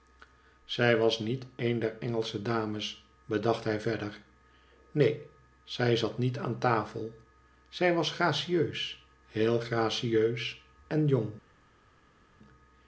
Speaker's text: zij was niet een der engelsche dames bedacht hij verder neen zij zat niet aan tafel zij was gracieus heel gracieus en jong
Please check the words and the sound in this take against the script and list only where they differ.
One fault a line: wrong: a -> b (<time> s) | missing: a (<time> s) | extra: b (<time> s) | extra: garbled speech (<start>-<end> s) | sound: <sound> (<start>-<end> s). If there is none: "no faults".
no faults